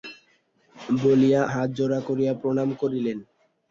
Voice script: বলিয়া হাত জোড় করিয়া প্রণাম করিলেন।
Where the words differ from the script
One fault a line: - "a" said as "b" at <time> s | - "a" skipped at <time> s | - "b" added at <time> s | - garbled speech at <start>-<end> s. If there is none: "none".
none